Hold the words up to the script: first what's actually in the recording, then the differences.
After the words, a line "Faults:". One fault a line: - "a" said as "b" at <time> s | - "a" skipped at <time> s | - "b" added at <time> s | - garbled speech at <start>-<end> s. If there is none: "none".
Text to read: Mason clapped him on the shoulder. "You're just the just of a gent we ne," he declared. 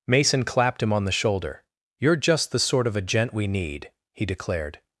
Mason clapped him on the shoulder. "You're just the sort of a gent we need," he declared.
Faults:
- "just" said as "sort" at 2.6 s
- "ne" said as "need" at 3.5 s